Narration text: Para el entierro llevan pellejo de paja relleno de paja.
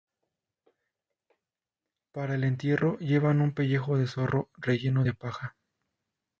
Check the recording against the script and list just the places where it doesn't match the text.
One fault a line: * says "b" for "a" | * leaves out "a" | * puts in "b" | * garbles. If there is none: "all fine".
* puts in "un"
* says "zorro" for "paja"